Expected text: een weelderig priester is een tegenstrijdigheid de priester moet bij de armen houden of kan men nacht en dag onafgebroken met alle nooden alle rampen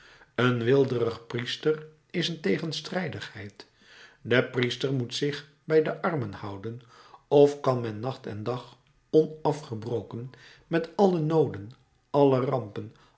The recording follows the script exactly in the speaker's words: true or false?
false